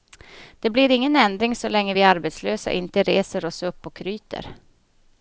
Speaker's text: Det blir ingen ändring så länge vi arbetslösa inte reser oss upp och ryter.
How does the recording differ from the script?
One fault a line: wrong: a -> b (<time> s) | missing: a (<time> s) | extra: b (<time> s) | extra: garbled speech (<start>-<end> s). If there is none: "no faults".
no faults